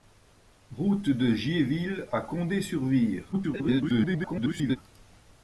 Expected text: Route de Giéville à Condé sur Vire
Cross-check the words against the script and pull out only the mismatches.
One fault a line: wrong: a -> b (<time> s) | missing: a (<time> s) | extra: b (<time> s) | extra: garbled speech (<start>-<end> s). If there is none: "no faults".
extra: garbled speech (3.3-4.8 s)